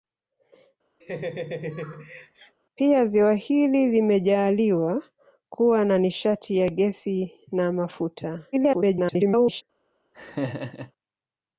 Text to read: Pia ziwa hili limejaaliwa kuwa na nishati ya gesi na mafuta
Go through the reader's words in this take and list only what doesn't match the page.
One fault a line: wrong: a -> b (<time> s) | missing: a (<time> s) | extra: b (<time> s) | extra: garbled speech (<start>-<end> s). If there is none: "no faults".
extra: garbled speech (8.5-9.6 s)